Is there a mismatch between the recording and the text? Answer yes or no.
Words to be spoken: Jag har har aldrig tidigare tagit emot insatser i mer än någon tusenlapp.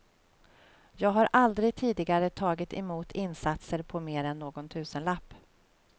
yes